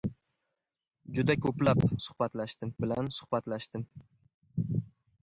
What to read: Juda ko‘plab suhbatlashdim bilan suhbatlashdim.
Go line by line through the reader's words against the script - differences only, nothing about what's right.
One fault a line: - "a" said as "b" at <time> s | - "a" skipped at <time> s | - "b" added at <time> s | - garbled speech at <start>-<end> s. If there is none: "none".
none